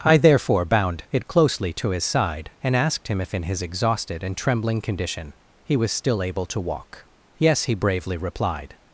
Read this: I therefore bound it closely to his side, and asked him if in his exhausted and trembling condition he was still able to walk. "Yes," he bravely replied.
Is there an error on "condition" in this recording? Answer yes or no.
no